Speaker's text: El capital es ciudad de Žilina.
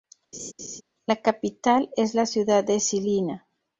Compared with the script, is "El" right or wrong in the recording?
wrong